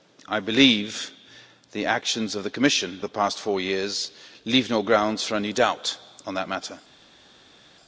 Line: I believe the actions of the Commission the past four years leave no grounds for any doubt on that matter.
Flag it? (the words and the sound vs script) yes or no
no